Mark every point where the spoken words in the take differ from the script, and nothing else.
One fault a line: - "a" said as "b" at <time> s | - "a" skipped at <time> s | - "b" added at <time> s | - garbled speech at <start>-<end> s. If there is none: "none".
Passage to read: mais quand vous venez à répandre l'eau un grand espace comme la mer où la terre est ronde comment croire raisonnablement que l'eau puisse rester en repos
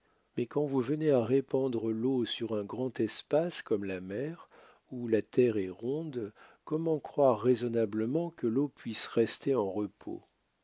- "sur" added at 2.2 s